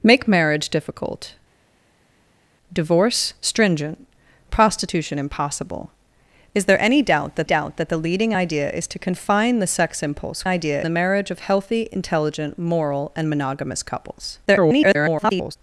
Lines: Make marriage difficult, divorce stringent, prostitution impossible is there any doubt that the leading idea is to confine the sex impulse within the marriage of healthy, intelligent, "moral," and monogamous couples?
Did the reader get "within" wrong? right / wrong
wrong